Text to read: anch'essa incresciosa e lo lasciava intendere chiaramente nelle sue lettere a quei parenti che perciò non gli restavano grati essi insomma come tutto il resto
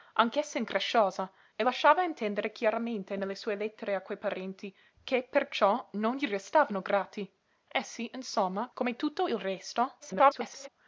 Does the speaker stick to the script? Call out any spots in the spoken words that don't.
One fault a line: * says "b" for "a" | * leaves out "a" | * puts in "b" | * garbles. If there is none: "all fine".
* leaves out "lo"
* garbles